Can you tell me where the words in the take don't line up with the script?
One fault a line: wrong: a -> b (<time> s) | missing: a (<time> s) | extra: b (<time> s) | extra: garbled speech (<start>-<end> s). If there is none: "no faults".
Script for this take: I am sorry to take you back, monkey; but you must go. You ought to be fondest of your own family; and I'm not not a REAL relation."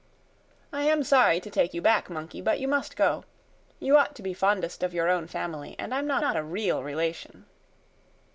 no faults